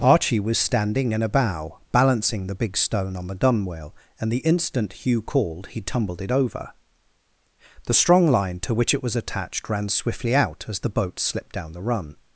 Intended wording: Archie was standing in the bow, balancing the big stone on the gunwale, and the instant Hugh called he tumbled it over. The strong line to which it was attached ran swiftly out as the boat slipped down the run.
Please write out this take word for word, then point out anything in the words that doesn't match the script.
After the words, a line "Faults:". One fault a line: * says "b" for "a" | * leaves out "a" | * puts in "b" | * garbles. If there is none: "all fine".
Archie was standing in a bow, balancing the big stone on the gunwale, and the instant Hugh called he tumbled it over. The strong line to which it was attached ran swiftly out as the boat slipped down the run.
Faults:
* says "a" for "the"